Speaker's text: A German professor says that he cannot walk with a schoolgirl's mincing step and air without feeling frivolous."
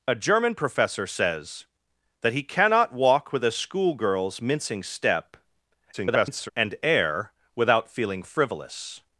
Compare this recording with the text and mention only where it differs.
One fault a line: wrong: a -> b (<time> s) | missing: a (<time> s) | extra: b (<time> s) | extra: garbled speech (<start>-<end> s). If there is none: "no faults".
extra: garbled speech (5.9-6.5 s)